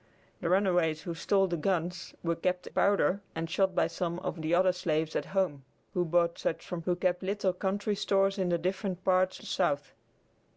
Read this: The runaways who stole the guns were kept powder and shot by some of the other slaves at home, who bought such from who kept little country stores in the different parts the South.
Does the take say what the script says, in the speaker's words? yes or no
yes